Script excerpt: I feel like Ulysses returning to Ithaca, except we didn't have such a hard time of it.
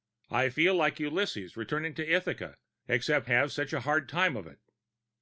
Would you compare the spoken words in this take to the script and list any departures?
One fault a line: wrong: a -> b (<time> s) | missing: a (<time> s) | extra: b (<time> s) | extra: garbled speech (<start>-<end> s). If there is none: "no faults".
missing: we didn't (3.3 s)